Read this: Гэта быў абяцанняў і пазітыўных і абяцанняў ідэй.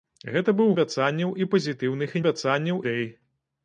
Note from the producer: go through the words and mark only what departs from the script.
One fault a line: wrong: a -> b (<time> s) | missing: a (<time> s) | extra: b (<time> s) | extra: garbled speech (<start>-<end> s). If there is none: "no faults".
no faults